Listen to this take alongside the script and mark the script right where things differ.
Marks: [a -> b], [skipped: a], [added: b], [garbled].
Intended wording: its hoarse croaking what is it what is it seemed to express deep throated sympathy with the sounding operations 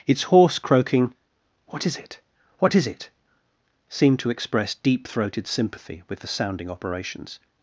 its hoarse croaking what is it what is it seemed to express deep throated sympathy with the sounding operations